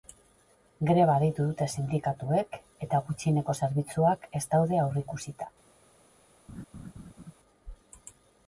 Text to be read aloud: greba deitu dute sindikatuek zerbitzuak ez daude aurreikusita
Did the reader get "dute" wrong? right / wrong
right